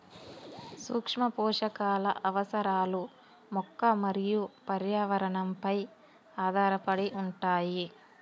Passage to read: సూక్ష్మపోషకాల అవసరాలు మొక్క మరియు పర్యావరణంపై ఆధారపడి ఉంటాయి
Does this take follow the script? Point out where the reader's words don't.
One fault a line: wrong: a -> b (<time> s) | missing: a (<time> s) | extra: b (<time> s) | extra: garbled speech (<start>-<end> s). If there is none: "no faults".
no faults